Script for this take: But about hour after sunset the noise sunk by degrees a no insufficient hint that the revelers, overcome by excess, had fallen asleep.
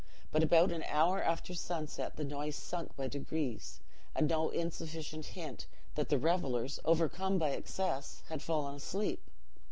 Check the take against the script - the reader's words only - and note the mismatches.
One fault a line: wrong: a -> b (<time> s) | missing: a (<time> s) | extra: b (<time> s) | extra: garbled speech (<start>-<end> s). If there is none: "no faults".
extra: an (0.7 s)